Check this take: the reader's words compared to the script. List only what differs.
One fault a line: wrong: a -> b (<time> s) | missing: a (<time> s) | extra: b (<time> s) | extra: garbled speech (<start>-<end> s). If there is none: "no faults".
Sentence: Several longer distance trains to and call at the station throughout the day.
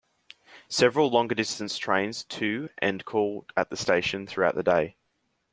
no faults